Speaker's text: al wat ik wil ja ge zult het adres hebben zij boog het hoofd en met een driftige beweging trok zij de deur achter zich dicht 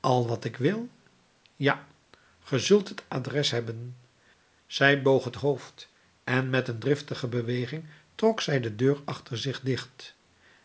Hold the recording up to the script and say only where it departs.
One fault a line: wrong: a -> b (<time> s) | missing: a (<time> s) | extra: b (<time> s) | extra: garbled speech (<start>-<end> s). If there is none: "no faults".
no faults